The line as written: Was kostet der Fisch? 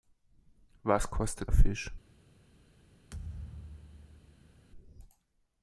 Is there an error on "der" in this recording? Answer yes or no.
yes